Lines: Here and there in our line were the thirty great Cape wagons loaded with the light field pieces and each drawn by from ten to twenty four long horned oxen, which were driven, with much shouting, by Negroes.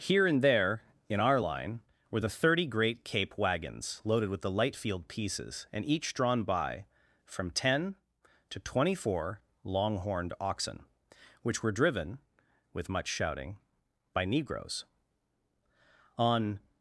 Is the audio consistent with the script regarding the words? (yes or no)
no